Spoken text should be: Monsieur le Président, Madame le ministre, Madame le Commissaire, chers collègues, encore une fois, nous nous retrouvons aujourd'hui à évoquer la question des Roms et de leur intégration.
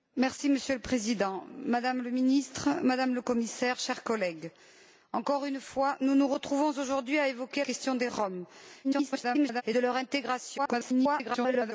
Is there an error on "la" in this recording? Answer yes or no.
yes